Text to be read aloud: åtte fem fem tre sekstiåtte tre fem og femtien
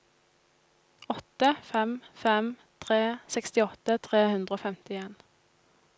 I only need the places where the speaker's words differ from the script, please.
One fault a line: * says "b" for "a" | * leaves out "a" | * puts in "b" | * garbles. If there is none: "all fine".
* says "hundre" for "fem"